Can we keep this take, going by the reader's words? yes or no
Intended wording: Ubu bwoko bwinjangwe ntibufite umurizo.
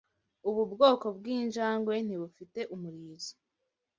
yes